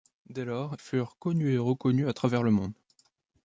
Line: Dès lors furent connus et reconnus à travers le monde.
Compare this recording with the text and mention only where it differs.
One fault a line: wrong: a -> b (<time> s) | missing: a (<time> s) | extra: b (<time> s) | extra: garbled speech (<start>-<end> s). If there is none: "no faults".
no faults